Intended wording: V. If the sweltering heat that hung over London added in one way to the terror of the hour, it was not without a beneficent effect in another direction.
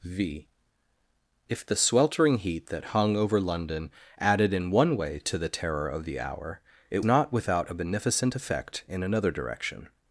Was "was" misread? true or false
true